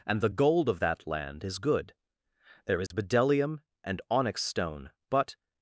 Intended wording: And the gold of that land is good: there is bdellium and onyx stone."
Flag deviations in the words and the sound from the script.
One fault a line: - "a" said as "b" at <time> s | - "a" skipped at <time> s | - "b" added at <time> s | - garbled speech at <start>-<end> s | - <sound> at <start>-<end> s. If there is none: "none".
- dropout at 2.9-2.9 s
- "But" added at 5.1 s